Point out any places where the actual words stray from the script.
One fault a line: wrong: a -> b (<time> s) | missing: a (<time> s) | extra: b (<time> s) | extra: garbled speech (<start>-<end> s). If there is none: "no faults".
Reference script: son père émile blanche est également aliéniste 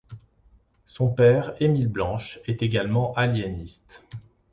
no faults